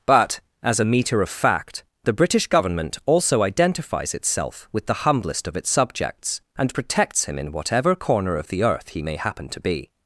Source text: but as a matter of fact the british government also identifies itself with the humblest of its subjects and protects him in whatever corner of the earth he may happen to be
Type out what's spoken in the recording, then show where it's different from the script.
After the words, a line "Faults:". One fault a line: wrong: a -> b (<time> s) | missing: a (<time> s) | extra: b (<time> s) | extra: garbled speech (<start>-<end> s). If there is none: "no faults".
but as a meter of fact the british government also identifies itself with the humblest of its subjects and protects him in whatever corner of the earth he may happen to be
Faults:
wrong: matter -> meter (0.8 s)